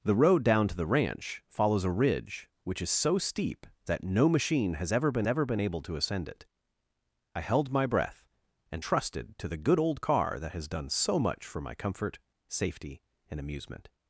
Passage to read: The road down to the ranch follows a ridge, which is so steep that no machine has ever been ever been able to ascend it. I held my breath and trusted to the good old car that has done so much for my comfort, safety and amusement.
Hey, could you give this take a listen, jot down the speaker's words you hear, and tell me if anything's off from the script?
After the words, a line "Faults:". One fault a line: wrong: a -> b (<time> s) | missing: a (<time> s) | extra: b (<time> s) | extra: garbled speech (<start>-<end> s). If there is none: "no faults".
The road down to the ranch follows a ridge, which is so steep that no machine has ever been ever been able to ascend it. I held my breath and trusted to the good old car that has done so much for my comfort, safety and amusement.
Faults:
no faults